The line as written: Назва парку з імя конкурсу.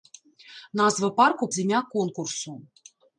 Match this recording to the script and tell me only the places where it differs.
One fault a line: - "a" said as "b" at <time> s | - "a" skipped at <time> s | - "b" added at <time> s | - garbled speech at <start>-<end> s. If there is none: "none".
none